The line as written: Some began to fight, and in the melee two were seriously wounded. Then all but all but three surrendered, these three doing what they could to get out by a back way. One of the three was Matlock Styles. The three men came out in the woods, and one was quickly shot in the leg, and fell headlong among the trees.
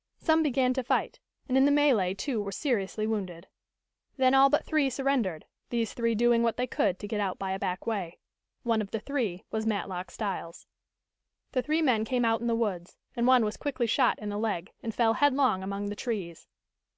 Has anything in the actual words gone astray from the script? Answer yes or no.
yes